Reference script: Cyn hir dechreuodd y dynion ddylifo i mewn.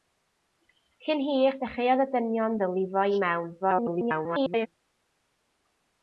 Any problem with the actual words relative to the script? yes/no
yes